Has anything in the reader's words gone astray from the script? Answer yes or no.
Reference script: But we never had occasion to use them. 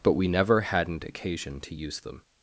yes